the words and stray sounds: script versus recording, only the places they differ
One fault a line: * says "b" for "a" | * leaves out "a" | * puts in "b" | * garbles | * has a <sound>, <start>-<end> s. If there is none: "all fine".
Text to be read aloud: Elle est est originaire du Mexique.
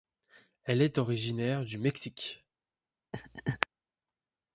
* leaves out "est"
* has a laugh, 3.1-3.7 s